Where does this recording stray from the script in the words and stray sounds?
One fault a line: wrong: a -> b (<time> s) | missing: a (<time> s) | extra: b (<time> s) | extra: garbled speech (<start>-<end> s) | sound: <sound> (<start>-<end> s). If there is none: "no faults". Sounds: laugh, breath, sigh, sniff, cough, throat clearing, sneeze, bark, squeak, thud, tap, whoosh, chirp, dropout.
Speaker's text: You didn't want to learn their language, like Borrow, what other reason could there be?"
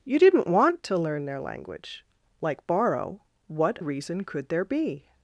missing: other (3.8 s)